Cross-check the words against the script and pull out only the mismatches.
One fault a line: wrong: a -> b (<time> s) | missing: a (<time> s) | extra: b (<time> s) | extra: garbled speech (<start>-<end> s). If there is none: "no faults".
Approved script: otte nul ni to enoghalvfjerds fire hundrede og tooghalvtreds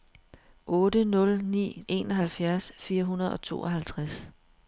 missing: to (1.8 s)